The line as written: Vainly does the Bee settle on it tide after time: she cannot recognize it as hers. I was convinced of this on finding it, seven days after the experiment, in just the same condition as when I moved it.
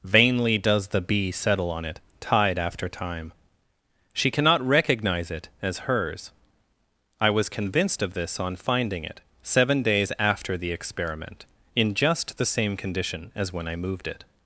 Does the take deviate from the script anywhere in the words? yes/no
no